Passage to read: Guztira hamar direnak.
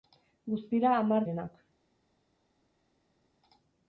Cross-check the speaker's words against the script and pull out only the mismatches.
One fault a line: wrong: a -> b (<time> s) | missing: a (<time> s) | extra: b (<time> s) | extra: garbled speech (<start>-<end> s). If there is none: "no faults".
no faults